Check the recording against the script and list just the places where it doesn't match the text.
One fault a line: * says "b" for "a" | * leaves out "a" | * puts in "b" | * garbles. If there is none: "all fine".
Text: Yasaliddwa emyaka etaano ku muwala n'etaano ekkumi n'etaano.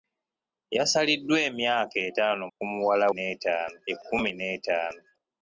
all fine